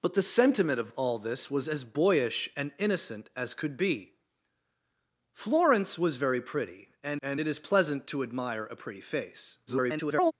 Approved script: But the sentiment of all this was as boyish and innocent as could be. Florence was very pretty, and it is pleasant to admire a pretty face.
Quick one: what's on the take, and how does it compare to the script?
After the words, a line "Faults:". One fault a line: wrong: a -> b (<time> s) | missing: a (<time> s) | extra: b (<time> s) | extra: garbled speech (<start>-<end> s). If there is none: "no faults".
But the sentiment of all this was as boyish and innocent as could be. Florence was very pretty, and and it is pleasant to admire a pretty face. [garbled]
Faults:
extra: and (7.2 s)
extra: garbled speech (9.7-10.3 s)